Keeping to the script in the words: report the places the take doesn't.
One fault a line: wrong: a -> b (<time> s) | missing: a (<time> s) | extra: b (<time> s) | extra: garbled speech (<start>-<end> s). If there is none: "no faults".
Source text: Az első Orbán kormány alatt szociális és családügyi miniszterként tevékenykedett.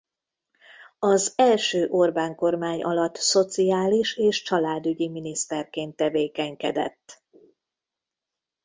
no faults